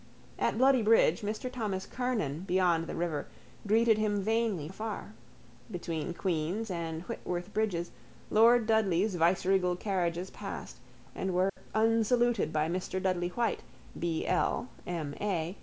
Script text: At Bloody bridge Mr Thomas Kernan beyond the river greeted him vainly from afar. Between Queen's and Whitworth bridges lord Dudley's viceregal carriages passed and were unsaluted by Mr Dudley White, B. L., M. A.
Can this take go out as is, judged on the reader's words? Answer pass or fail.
fail